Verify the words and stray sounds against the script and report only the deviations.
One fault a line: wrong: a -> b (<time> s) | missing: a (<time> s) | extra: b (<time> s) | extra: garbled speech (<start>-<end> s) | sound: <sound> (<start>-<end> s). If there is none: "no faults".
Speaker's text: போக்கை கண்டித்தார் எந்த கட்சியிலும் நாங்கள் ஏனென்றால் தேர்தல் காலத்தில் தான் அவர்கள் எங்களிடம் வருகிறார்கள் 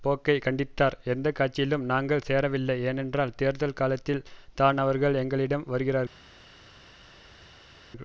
extra: சேரவில்லை (2.3 s)